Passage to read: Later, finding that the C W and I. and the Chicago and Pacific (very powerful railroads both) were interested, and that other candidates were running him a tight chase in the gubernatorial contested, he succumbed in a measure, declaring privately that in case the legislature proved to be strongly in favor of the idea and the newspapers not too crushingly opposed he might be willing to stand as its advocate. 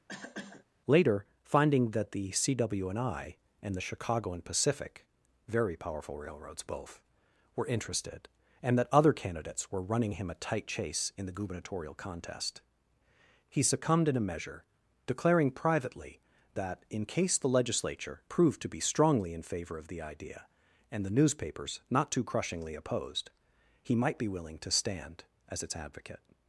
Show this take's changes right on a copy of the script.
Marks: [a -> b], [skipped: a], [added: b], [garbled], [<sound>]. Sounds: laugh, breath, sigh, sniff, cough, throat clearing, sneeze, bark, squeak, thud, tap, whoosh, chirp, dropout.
[cough] Later, finding that the C W and I. and the Chicago and Pacific (very powerful railroads both) were interested, and that other candidates were running him a tight chase in the gubernatorial [contested, -> contest] he succumbed in a measure, declaring privately that in case the legislature proved to be strongly in favor of the idea and the newspapers not too crushingly opposed he might be willing to stand as its advocate.